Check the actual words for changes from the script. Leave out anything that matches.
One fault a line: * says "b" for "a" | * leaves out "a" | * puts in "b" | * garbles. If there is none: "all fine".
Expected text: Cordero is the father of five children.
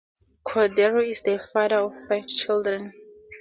all fine